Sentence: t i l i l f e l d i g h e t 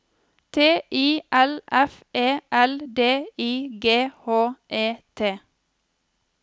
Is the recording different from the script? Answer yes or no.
yes